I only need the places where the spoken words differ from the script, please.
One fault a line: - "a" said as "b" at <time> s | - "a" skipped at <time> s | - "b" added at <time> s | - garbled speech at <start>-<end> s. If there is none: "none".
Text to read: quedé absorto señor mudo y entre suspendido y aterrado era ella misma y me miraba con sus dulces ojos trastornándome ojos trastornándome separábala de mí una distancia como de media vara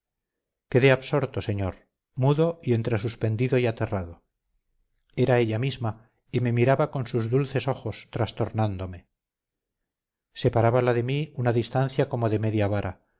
- "ojos trastornándome" skipped at 9.1 s